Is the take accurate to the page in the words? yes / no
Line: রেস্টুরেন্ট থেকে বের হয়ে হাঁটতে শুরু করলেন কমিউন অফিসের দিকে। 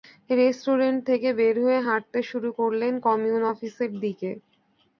yes